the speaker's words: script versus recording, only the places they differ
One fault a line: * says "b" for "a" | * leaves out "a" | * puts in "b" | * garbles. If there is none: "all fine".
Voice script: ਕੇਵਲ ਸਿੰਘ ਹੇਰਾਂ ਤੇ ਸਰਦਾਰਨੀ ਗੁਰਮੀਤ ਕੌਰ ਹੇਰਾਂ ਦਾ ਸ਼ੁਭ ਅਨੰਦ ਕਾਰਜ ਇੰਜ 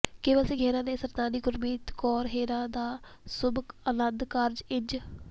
all fine